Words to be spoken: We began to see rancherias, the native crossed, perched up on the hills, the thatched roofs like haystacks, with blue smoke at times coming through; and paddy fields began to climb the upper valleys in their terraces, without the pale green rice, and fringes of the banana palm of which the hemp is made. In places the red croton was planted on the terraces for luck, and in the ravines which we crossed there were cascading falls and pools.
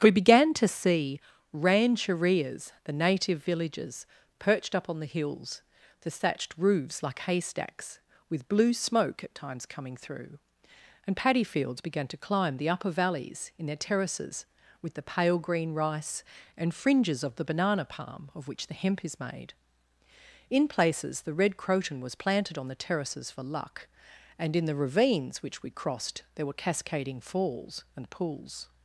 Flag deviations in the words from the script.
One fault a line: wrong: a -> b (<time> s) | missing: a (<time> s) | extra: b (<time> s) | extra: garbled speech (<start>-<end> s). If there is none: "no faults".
wrong: crossed -> villages (3.4 s)
wrong: without -> with (14.8 s)